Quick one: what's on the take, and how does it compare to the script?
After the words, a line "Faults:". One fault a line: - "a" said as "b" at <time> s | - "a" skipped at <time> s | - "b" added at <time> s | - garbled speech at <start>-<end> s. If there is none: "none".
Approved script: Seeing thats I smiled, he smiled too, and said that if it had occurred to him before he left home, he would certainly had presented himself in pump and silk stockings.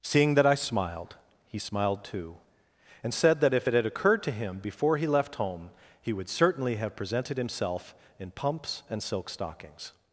Seeing that I smiled, he smiled too, and said that if it had occurred to him before he left home, he would certainly have presented himself in pumps and silk stockings.
Faults:
- "thats" said as "that" at 0.3 s
- "had" said as "have" at 6.8 s
- "pump" said as "pumps" at 8.3 s